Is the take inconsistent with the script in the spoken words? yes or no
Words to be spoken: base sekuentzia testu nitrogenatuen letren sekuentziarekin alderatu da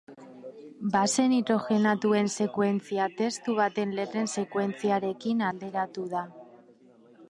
yes